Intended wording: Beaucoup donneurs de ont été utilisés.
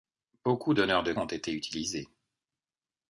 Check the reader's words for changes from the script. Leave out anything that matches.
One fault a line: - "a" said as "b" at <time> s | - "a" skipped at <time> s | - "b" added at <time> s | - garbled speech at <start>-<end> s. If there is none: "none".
none